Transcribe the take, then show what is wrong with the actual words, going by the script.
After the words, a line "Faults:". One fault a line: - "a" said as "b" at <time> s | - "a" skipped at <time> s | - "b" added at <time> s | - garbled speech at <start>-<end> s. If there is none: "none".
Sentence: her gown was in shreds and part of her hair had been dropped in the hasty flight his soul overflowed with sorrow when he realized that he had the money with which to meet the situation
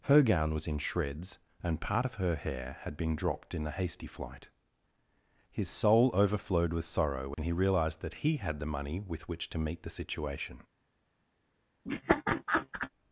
her gown was in shreds and part of her hair had been dropped in the hasty flight his soul overflowed with sorrow when he realized that he had the money with which to meet the situation
Faults:
none